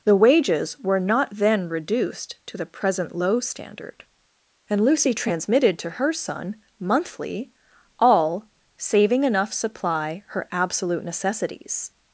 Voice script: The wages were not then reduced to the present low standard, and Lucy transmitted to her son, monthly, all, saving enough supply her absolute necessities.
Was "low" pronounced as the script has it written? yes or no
yes